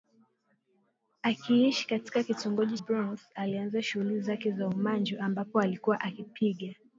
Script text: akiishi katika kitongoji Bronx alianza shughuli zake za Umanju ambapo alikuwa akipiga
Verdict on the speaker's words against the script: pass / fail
pass